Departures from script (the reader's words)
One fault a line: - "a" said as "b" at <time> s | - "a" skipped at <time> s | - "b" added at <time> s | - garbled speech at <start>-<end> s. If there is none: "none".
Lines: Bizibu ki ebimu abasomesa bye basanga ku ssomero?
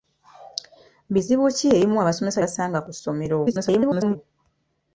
- "bye" skipped at 2.4 s
- garbled speech at 3.4-4.2 s